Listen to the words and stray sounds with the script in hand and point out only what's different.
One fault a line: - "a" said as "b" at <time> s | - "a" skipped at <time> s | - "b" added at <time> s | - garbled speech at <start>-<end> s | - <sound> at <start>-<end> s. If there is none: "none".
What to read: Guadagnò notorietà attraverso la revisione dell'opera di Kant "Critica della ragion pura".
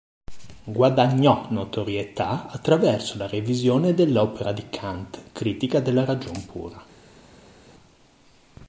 none